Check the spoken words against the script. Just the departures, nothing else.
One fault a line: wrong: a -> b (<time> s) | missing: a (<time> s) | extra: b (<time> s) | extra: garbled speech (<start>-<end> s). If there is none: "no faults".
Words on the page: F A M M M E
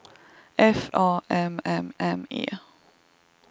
no faults